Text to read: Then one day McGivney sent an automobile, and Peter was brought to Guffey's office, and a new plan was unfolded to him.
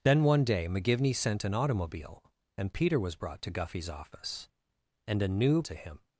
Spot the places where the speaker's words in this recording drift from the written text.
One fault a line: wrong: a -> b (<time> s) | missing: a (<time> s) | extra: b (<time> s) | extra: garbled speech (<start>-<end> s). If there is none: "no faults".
missing: plan was unfolded (5.6 s)